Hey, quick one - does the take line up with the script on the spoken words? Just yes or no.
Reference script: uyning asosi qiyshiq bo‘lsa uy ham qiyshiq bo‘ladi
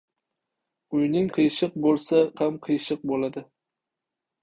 no